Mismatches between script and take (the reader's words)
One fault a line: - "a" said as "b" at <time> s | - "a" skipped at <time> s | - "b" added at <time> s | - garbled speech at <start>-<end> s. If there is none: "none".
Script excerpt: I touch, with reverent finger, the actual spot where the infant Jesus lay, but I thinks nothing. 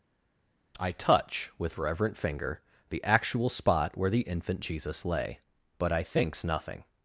none